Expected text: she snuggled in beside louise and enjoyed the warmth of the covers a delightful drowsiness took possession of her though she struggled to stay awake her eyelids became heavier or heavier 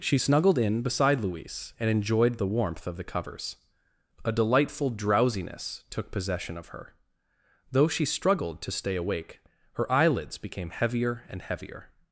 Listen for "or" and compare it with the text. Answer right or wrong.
wrong